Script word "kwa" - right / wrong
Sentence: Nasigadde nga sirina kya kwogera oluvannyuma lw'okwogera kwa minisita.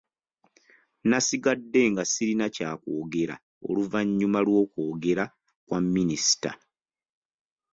right